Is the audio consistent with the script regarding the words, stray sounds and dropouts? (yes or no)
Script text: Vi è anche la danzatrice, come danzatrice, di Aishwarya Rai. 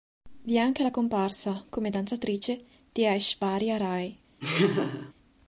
no